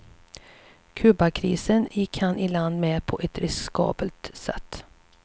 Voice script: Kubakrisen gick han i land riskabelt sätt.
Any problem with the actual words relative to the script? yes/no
yes